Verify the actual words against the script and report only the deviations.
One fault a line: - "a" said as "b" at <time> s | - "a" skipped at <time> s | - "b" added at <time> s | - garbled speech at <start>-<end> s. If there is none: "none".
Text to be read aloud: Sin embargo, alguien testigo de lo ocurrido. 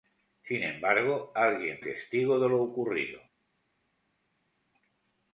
none